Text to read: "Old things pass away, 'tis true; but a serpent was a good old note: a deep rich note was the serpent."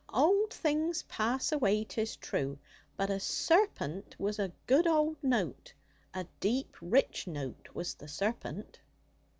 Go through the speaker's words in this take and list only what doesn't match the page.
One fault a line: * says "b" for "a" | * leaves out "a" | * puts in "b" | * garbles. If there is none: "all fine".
all fine